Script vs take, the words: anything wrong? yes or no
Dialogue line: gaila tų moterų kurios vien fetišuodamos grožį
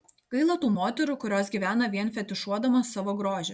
yes